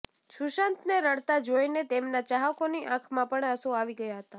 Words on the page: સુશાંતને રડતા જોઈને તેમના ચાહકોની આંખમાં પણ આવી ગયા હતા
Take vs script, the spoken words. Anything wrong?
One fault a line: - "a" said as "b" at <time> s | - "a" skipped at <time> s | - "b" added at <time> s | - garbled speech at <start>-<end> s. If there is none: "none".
- "આંસુ" added at 3.5 s